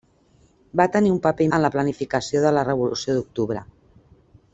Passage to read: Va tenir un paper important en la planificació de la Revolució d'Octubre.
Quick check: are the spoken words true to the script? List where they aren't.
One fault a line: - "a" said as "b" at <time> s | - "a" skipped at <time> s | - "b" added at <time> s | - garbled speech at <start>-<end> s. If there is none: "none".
- "important" skipped at 1.5 s